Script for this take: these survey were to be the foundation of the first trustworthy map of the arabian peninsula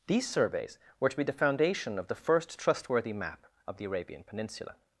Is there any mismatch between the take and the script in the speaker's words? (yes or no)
yes